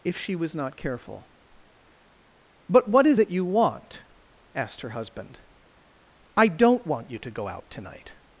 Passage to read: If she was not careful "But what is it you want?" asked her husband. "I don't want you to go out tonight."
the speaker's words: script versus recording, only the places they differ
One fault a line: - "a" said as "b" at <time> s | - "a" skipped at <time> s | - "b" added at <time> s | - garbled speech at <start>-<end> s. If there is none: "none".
none